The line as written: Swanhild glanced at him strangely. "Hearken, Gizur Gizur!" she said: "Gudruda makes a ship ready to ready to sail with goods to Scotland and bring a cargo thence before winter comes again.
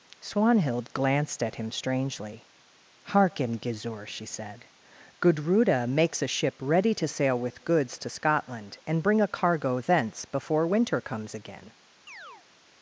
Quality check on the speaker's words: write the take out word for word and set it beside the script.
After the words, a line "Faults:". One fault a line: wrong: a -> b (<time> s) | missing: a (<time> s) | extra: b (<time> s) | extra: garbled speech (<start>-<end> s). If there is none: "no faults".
Swanhild glanced at him strangely. "Hearken, Gizur!" she said: "Gudruda makes a ship ready to sail with goods to Scotland and bring a cargo thence before winter comes again.
Faults:
missing: Gizur (4.1 s)
missing: ready to (7.1 s)